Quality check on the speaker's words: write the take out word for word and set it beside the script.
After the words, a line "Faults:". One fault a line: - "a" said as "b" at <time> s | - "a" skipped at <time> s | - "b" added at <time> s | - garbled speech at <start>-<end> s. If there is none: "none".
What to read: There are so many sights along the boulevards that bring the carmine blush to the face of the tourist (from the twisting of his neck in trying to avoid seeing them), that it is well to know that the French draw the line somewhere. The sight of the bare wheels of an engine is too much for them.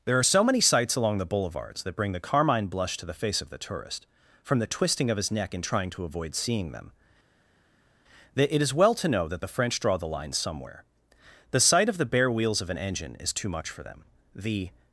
There are so many sights along the boulevards that bring the carmine blush to the face of the tourist (from the twisting of his neck in trying to avoid seeing them), that it is well to know that the French draw the line somewhere. The sight of the bare wheels of an engine is too much for them. The
Faults:
- "The" added at 14.4 s